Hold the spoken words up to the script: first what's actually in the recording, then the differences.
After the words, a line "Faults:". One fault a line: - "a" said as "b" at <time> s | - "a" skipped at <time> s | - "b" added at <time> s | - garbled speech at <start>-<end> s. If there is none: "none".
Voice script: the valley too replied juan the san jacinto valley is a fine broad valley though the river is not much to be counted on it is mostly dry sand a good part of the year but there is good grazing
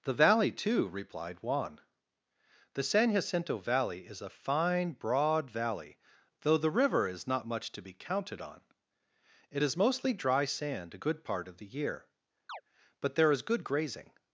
the valley too replied juan the san jacinto valley is a fine broad valley though the river is not much to be counted on it is mostly dry sand a good part of the year but there is good grazing
Faults:
none